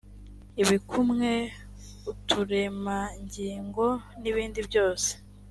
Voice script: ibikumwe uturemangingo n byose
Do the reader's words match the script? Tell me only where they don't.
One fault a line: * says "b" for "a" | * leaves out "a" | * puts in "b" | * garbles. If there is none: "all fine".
* puts in "ibindi"